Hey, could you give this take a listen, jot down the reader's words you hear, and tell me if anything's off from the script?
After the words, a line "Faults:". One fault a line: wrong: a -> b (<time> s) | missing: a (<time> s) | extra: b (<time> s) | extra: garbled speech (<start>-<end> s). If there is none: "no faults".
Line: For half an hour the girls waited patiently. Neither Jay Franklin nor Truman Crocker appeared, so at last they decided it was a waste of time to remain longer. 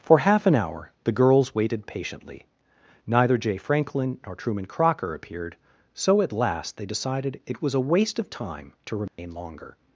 For half an hour the girls waited patiently. Neither Jay Franklin nor Truman Crocker appeared, so at last they decided it was a waste of time to remain longer.
Faults:
no faults